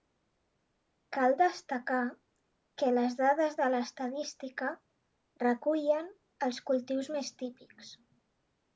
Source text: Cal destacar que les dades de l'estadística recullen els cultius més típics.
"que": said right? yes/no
yes